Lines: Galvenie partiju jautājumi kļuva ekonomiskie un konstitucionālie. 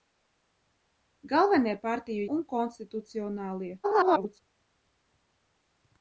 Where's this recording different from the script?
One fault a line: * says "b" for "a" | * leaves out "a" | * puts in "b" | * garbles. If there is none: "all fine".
* leaves out "jautājumi kļuva ekonomiskie"
* garbles